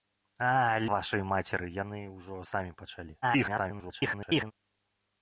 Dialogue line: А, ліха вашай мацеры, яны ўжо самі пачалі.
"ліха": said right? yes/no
no